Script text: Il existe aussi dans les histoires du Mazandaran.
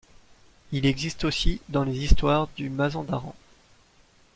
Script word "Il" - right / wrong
right